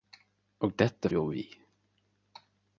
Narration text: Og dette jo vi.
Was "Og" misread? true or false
false